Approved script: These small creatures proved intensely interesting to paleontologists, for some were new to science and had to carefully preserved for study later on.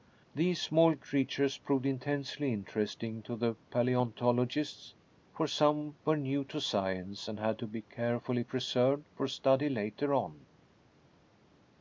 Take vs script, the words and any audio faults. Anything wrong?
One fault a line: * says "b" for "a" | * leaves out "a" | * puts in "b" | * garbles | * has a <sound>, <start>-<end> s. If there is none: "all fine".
* puts in "the"
* puts in "be"